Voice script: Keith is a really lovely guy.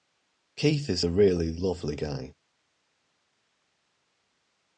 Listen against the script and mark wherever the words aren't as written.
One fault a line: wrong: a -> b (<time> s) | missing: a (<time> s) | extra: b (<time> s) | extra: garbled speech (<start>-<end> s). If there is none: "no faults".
no faults